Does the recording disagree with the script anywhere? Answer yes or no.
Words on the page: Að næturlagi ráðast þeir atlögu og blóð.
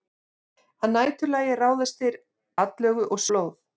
no